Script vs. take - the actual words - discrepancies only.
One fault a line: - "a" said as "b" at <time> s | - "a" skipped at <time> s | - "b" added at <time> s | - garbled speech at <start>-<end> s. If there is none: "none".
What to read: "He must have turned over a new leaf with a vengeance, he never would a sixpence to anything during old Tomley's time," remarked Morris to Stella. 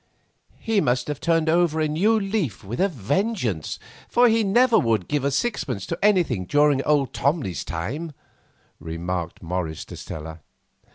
- "for" added at 4.1 s
- "give" added at 5.1 s